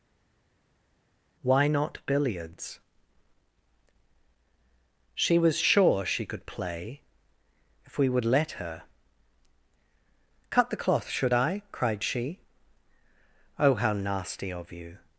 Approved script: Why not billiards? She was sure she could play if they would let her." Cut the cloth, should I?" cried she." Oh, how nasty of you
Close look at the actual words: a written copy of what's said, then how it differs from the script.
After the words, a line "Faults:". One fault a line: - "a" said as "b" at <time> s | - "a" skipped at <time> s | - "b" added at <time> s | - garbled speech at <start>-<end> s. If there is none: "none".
Why not billiards? She was sure she could play if we would let her." Cut the cloth, should I?" cried she." Oh, how nasty of you
Faults:
- "they" said as "we" at 8.0 s